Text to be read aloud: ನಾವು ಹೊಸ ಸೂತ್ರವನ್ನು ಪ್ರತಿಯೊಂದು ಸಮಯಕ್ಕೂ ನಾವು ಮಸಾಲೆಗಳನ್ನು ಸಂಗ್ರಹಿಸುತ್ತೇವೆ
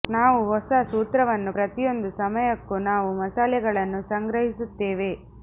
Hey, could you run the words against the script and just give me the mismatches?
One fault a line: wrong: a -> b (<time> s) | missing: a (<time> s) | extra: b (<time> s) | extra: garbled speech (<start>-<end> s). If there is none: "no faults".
no faults